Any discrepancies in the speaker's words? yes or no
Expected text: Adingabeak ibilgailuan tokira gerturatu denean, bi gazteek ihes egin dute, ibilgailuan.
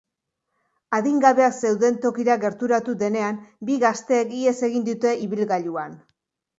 yes